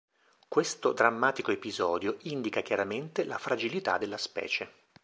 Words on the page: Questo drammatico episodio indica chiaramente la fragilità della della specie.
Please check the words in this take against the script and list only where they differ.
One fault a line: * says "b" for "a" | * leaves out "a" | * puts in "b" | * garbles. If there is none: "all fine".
* leaves out "della"